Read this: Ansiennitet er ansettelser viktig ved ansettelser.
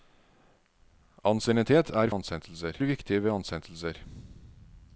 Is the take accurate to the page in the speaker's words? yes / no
yes